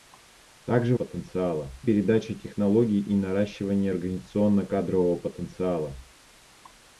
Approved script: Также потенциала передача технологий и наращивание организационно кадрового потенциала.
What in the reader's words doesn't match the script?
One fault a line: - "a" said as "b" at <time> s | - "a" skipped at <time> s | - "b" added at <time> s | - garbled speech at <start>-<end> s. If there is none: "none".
none